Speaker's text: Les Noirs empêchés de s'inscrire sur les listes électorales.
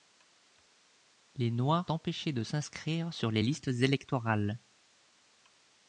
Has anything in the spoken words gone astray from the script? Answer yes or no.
no